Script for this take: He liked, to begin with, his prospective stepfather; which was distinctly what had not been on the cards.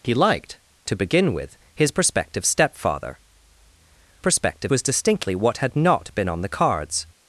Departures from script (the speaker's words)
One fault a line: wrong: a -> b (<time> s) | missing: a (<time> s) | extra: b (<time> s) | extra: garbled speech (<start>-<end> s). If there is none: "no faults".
wrong: which -> prospective (4.2 s)